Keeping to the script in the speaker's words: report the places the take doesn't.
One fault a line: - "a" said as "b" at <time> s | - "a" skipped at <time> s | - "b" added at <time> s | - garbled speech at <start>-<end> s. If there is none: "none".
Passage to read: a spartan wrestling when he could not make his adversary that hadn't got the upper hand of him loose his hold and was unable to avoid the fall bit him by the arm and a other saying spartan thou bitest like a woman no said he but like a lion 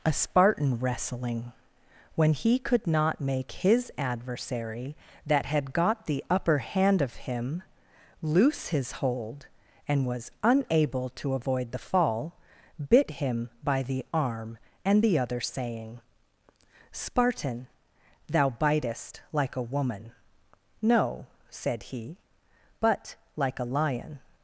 - "hadn't" said as "had" at 5.5 s
- "a" said as "the" at 15.0 s